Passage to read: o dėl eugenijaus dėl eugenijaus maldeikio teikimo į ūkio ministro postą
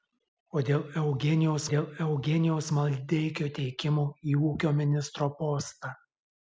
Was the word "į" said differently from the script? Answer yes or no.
no